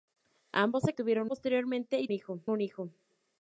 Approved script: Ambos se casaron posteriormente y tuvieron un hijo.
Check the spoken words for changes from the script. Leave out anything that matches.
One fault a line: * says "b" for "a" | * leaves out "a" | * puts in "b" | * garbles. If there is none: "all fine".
* says "tuvieron" for "casaron"
* says "hijo" for "tuvieron"